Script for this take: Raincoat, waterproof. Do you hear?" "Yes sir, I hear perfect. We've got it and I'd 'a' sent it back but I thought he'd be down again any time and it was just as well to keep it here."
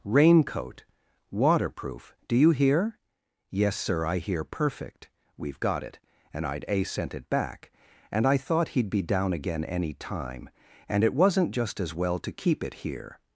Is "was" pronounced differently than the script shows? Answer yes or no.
yes